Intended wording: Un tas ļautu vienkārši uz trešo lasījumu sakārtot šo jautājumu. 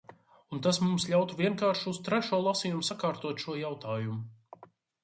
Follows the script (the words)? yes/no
no